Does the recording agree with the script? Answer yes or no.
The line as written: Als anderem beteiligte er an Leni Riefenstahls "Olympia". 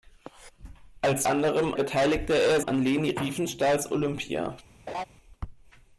yes